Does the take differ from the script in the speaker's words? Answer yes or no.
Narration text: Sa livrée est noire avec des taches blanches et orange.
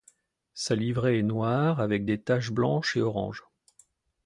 no